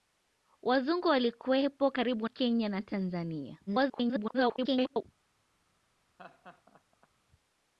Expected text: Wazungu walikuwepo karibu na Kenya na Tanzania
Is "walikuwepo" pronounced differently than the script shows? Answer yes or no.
no